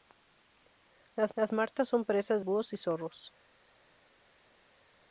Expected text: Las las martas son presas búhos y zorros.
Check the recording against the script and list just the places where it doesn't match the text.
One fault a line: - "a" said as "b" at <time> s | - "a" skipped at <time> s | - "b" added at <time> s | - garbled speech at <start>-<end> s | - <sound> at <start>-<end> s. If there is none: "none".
none